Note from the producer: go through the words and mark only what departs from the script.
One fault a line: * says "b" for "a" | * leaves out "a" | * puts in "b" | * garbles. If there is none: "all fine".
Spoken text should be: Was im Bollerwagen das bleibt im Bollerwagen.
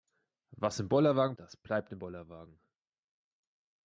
all fine